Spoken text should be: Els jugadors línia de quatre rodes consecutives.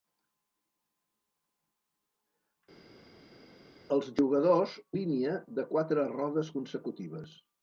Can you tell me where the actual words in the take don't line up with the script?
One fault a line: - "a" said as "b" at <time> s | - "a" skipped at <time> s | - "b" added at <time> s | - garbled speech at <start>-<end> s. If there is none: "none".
none